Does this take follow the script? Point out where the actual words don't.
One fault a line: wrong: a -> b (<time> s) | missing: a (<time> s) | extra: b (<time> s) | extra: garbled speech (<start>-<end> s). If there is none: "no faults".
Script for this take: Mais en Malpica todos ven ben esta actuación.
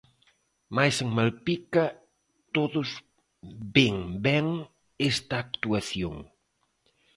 no faults